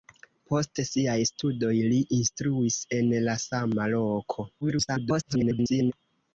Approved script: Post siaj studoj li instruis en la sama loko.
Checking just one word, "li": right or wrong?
right